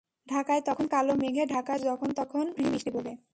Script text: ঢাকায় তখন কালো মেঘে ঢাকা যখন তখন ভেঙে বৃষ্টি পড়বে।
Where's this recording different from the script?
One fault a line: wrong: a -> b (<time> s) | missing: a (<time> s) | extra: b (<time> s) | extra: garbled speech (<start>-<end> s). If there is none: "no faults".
no faults